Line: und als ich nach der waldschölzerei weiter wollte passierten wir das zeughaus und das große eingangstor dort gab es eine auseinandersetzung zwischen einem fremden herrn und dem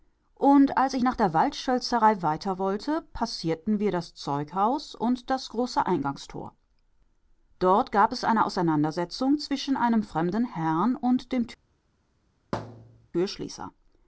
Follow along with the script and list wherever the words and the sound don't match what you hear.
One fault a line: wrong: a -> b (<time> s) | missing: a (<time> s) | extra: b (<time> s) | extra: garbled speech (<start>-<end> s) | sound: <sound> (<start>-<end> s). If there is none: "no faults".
sound: thud (12.5-13.1 s)